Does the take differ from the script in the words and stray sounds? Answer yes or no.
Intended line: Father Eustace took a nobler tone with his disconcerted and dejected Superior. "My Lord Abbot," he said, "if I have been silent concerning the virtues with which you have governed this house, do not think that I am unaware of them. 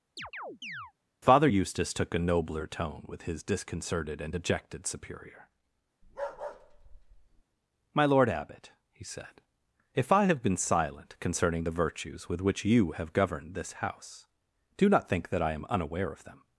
yes